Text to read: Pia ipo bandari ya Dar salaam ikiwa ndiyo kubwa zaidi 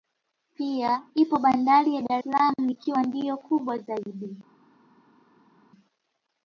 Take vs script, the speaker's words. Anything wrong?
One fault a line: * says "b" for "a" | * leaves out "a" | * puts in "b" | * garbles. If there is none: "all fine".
all fine